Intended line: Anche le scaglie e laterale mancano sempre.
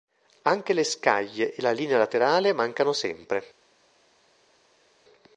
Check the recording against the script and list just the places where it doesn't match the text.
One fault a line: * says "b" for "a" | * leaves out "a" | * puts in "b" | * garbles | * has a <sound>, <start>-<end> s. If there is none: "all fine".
* puts in "la linea"